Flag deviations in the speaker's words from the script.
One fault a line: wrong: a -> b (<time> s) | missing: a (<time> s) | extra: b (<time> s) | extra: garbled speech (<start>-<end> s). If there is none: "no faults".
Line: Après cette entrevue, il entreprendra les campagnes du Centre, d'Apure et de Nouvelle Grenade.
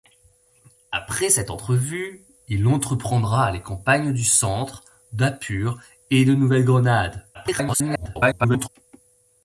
extra: garbled speech (7.3-8.7 s)